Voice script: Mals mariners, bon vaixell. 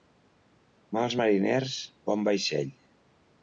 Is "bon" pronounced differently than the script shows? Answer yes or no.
no